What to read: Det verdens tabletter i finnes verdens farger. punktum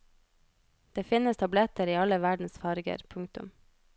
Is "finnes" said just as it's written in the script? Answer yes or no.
no